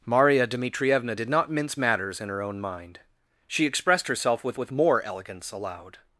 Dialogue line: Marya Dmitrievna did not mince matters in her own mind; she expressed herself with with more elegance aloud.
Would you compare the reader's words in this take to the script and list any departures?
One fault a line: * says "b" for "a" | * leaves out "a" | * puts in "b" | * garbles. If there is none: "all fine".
all fine